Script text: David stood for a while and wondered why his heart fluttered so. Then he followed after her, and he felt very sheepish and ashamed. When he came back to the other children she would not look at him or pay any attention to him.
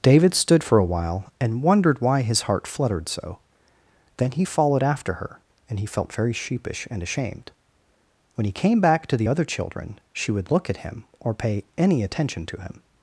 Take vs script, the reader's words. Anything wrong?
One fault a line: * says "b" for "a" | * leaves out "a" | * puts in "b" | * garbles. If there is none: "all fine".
* leaves out "not"